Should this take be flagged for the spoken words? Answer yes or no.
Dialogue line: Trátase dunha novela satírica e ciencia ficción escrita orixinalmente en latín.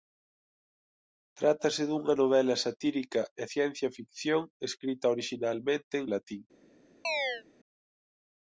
no